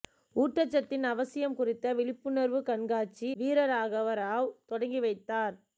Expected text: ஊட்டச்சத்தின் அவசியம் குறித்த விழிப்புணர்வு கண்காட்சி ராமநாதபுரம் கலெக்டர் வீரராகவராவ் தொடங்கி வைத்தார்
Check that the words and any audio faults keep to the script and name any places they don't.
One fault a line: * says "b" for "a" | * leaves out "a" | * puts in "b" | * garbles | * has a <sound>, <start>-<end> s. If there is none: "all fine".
* leaves out "ராமநாதபுரம் கலெக்டர்"